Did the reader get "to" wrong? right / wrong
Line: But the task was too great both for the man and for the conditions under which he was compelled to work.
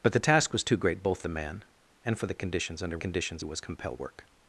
wrong